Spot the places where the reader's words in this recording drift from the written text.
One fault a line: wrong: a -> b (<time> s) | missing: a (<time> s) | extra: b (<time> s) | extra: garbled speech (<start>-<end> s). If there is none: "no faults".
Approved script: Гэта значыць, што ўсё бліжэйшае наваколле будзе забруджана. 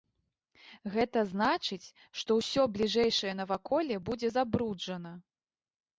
no faults